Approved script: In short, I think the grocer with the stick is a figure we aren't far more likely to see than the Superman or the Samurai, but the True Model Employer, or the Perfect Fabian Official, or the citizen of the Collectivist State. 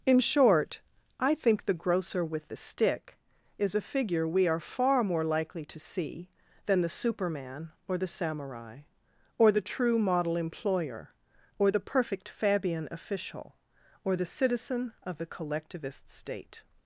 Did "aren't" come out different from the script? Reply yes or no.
yes